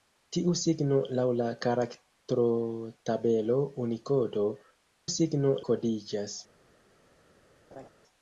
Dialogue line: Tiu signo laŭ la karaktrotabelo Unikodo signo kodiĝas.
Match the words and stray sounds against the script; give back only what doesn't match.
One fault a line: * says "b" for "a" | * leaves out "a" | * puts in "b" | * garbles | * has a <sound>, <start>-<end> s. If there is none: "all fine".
* has a laugh, 7.7-7.9 s